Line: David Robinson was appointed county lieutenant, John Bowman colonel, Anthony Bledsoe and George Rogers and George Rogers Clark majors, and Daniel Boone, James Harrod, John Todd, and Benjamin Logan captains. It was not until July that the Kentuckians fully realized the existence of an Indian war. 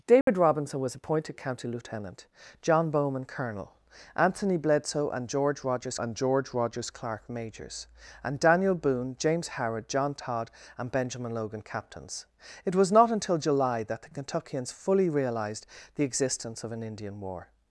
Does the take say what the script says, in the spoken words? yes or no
yes